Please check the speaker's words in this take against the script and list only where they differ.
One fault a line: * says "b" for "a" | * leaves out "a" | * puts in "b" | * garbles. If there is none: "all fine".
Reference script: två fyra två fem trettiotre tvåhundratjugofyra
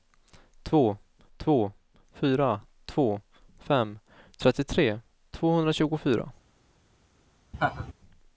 * puts in "två"